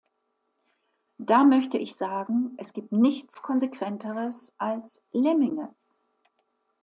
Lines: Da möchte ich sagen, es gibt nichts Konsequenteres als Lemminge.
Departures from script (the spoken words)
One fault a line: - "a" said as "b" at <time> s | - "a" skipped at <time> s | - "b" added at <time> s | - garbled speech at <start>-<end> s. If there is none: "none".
none